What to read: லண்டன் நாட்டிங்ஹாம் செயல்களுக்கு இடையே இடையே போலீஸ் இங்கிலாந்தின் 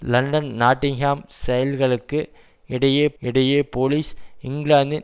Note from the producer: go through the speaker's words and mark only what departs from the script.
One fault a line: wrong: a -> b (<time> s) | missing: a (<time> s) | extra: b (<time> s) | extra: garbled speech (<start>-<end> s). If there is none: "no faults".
no faults